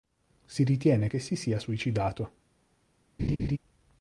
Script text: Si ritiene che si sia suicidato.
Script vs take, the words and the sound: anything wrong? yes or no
yes